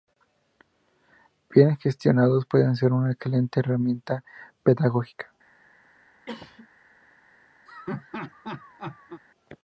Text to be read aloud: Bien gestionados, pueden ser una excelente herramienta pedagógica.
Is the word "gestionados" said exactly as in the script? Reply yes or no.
yes